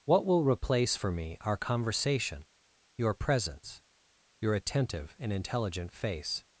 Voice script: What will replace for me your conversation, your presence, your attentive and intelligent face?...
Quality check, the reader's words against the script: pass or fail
fail